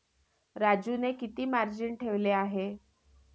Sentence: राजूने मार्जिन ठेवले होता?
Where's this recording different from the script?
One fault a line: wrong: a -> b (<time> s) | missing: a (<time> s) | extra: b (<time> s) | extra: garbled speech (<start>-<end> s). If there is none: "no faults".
extra: किती (1.1 s)
wrong: होता -> आहे (2.3 s)